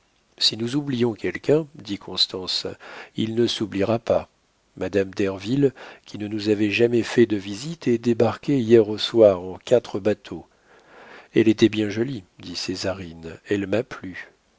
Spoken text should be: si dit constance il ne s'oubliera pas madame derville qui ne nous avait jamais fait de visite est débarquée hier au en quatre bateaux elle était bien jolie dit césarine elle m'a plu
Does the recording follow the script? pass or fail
fail